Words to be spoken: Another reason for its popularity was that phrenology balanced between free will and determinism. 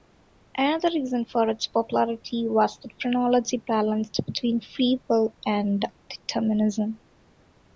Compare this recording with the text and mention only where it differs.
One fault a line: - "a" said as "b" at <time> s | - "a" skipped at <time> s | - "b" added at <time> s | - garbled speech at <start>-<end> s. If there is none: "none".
none